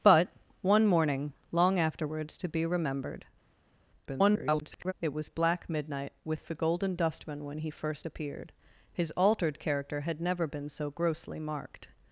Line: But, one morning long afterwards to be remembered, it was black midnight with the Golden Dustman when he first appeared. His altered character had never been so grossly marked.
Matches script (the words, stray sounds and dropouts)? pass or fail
fail